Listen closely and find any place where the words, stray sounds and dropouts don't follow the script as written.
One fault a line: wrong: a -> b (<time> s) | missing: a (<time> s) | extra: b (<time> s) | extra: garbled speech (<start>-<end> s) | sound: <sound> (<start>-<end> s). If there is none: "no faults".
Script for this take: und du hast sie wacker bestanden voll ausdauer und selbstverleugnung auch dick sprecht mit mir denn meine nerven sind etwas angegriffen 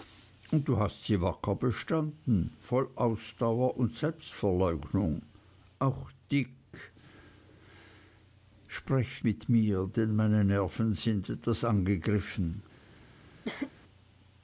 sound: cough (13.4-13.7 s)